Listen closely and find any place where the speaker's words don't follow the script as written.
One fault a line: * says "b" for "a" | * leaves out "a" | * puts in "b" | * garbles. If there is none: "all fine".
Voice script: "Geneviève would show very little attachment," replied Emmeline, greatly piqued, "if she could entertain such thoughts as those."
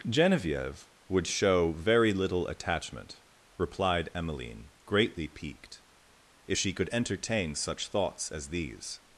* says "these" for "those"